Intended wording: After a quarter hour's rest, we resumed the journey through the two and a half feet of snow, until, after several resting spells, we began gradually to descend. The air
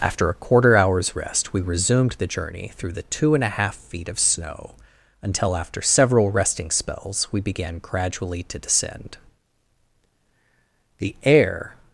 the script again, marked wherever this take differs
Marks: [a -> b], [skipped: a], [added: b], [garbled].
After a quarter hour's rest, we resumed the journey through the two and a half feet of snow, until, after several resting spells, we began gradually to descend. The air